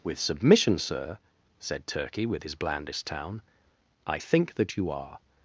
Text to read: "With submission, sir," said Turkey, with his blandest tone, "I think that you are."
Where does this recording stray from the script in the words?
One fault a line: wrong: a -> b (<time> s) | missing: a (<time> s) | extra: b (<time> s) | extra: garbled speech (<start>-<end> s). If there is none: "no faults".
wrong: tone -> town (3.1 s)